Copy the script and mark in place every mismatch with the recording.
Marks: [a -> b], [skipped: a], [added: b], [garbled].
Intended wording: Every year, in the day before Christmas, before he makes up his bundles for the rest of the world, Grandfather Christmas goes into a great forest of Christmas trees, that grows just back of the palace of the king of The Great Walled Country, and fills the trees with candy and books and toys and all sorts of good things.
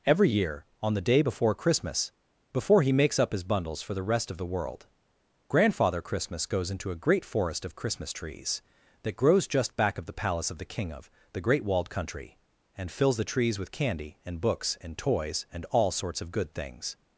Every year, [in -> on] the day before Christmas, before he makes up his bundles for the rest of the world, Grandfather Christmas goes into a great forest of Christmas trees, that grows just back of the palace of the king of The Great Walled Country, and fills the trees with candy and books and toys and all sorts of good things.